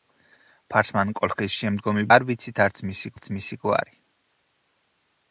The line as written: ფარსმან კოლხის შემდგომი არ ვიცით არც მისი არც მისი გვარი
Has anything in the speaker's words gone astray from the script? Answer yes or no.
no